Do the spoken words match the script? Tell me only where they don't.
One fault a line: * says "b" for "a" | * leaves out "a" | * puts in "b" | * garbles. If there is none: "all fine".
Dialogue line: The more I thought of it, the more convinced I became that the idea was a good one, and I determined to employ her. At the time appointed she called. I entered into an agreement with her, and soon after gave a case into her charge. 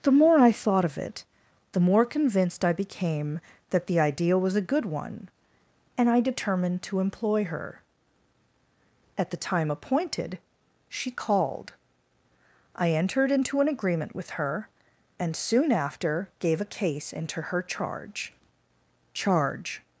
* puts in "charge"